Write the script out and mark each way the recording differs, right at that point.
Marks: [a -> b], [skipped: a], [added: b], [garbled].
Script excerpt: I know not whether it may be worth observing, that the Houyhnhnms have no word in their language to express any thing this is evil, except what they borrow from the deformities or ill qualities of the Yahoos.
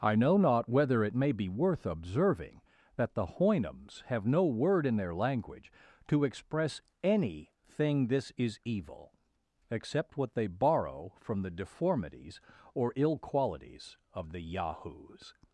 I know not whether it may be worth observing, that the Houyhnhnms have no word in their language to express any thing this is evil, except what they borrow from the deformities or ill qualities of the Yahoos.